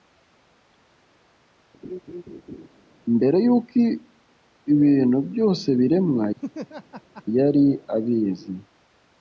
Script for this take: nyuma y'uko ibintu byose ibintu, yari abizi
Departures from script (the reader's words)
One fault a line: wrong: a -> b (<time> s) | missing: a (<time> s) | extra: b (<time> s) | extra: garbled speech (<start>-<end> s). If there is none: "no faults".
wrong: nyuma -> mbere (3.2 s)
wrong: ibintu -> biremwa (5.8 s)